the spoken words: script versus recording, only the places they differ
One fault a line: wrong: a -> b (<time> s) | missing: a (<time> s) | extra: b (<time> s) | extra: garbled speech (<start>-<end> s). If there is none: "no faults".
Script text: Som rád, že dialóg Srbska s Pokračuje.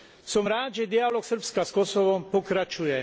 extra: Kosovom (1.7 s)